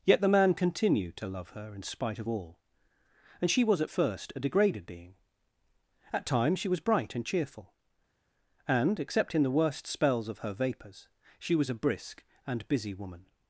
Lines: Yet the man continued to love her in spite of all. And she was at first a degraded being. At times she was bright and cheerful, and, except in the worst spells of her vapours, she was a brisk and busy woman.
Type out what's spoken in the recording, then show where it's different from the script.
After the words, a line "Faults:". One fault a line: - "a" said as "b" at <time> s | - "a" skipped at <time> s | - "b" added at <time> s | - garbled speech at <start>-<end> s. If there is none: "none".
Yet the man continued to love her in spite of all. And she was at first a degraded being. At times she was bright and cheerful, and, except in the worst spells of her vapours, she was a brisk and busy woman.
Faults:
none